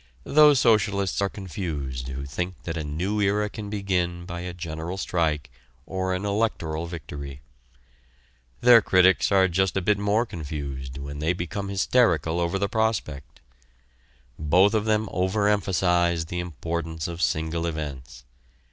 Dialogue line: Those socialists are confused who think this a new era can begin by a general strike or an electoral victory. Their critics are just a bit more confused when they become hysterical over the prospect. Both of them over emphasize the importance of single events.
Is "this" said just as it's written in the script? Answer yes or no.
no